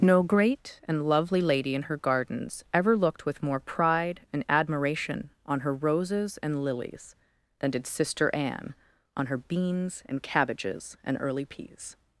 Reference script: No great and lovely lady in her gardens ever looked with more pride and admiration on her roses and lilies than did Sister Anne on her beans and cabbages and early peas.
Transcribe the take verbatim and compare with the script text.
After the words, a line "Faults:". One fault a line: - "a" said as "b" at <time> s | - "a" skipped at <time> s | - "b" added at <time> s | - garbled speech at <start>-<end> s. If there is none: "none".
No great and lovely lady in her gardens ever looked with more pride and admiration on her roses and lilies than did Sister Anne on her beans and cabbages and early peas.
Faults:
none